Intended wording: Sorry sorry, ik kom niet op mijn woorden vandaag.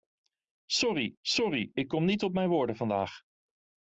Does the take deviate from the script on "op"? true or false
false